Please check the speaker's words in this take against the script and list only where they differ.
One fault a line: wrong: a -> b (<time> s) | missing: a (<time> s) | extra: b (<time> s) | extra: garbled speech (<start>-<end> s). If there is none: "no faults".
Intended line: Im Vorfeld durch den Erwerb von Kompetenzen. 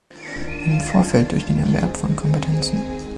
no faults